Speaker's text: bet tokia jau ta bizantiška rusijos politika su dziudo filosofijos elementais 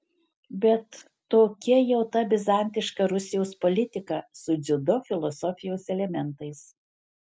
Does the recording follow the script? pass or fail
pass